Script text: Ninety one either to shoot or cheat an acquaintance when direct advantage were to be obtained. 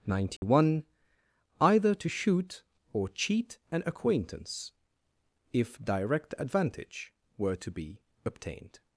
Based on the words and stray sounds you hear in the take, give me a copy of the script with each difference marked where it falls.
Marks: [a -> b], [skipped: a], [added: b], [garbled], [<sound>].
Ninety [dropout] one either to shoot or cheat an acquaintance [when -> if] direct advantage were to be obtained.